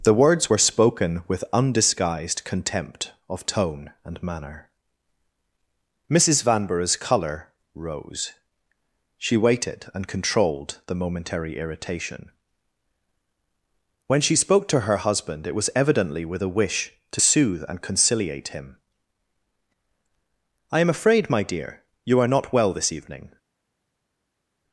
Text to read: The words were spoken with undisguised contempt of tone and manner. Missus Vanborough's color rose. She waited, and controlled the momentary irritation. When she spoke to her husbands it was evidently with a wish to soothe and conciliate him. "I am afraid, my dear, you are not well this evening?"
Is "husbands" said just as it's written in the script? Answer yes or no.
no